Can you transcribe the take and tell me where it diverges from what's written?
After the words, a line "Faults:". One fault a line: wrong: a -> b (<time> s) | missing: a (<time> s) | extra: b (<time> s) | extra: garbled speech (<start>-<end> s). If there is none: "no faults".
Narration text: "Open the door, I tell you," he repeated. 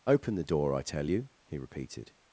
"Open the door, I tell you," he repeated.
Faults:
no faults